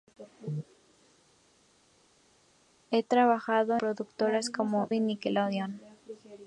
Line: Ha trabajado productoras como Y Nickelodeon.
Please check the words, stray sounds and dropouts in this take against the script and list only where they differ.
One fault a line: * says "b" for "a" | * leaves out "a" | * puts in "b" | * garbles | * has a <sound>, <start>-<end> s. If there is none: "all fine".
all fine